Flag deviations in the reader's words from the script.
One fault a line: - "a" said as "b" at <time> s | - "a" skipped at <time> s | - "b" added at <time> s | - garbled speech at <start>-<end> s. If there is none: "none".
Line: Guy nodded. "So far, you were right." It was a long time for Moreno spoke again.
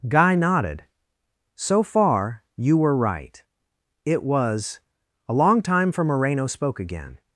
none